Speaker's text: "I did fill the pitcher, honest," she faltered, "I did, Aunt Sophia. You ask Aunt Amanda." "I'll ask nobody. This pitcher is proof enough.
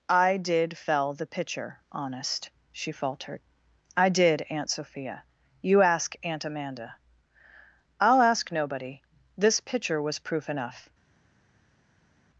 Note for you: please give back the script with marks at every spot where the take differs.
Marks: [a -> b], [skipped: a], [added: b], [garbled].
"I did [fill -> fell] the pitcher, honest," she faltered, "I did, Aunt Sophia. You ask Aunt Amanda." "I'll ask nobody. This pitcher [is -> was] proof enough.